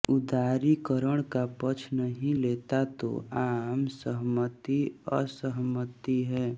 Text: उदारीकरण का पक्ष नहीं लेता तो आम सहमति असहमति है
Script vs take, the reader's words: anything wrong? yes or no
no